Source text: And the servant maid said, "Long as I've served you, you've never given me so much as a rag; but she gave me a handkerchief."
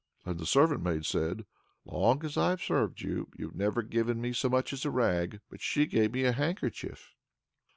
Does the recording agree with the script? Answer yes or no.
yes